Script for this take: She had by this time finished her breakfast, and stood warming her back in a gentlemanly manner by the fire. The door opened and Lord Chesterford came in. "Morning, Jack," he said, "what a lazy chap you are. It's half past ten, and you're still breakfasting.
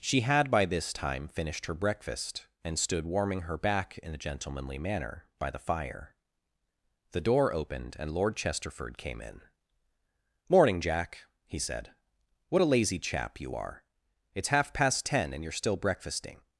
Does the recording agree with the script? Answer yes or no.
yes